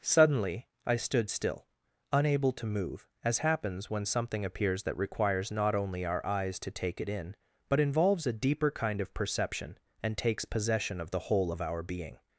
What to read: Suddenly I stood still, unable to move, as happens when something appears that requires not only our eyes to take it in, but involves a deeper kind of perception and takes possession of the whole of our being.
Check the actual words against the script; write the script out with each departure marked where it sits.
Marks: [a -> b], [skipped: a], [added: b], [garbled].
Suddenly I stood still, unable to move, as happens when something appears that requires not only our eyes to take it in, but involves a deeper kind of perception and takes possession of the whole of our being.